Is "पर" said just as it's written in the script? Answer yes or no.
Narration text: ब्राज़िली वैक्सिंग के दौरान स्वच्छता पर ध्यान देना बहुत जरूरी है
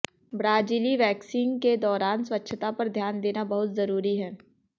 yes